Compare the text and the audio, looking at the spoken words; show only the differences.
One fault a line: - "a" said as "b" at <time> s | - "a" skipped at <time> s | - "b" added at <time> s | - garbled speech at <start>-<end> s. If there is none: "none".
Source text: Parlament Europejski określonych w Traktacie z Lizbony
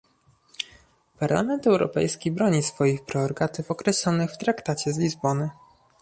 - "broni swoich prerogatyw" added at 2.3 s